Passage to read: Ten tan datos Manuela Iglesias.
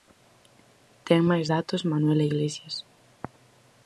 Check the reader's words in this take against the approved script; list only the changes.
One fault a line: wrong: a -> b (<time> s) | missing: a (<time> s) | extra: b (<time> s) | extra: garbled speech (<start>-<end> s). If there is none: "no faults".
wrong: tan -> máis (1.3 s)